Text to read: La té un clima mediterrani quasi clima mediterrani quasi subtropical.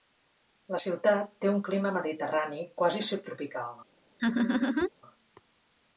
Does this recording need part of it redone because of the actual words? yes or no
yes